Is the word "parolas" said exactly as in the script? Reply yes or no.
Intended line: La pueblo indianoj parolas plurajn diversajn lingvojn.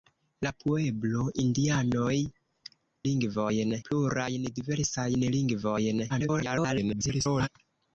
no